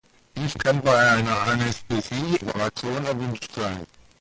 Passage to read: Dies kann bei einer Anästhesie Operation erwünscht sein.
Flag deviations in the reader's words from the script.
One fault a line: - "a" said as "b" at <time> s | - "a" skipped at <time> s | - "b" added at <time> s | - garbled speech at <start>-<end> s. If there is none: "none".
none